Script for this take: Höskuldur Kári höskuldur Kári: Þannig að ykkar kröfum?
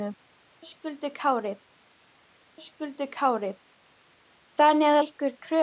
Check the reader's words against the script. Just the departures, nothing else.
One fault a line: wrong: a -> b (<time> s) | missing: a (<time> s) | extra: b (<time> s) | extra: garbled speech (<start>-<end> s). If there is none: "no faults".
no faults